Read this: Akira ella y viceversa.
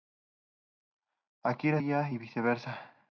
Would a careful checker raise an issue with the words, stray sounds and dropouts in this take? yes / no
no